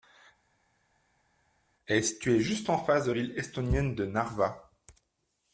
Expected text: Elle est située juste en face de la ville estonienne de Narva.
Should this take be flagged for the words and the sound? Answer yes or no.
yes